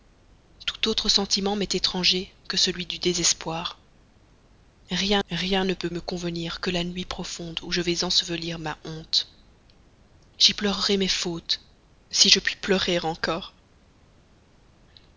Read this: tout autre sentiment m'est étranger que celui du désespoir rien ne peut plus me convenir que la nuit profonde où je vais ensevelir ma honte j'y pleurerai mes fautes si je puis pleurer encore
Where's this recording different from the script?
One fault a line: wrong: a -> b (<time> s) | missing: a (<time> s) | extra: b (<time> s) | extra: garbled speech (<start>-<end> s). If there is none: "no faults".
extra: rien (5.3 s)
missing: plus (5.9 s)